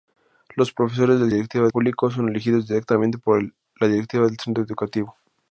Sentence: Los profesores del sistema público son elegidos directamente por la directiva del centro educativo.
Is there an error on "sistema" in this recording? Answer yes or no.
yes